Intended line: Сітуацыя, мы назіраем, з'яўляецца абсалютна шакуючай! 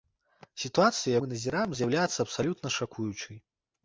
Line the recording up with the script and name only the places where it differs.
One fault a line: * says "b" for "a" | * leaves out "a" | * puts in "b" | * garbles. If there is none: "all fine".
all fine